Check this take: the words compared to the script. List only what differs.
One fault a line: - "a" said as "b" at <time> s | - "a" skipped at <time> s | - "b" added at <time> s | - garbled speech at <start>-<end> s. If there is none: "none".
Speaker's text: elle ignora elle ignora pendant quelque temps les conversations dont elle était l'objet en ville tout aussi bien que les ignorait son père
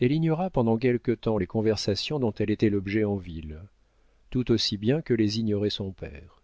- "elle ignora" skipped at 0.5 s